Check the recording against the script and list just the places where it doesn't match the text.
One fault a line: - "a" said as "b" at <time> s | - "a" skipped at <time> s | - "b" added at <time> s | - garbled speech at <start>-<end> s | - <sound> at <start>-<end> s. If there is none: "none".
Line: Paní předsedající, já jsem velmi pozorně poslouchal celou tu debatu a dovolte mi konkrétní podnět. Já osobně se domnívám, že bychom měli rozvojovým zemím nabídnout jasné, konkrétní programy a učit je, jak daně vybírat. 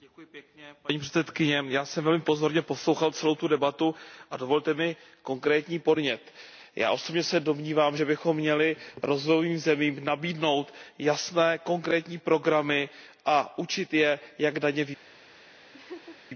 - laugh at 15.7-16.2 s